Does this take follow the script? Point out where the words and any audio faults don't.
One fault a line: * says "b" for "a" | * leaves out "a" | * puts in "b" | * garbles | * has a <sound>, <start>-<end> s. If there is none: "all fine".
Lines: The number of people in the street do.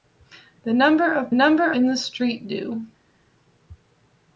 * says "number" for "people"